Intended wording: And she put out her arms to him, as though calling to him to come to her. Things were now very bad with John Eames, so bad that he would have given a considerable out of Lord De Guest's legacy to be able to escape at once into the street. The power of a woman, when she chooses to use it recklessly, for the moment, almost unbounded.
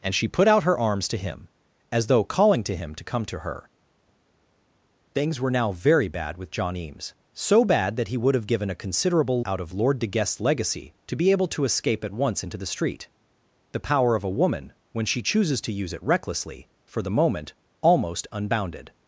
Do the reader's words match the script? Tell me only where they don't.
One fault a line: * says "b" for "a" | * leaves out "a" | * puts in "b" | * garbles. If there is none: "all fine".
all fine